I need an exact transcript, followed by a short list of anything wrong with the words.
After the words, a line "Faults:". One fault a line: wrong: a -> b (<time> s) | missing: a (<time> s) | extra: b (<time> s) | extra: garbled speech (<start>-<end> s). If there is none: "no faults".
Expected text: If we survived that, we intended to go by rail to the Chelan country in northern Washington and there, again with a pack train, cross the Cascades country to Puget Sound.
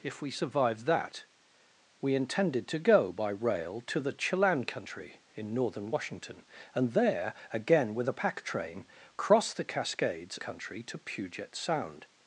If we survived that, we intended to go by rail to the Chelan country in northern Washington and there, again with a pack train, cross the Cascades country to Puget Sound.
Faults:
no faults